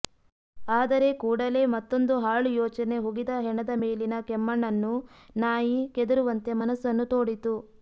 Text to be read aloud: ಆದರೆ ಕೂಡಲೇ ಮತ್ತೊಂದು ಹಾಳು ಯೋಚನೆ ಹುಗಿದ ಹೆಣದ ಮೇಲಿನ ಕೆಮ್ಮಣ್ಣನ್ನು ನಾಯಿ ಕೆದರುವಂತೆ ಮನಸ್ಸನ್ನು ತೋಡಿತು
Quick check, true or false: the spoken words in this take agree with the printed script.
true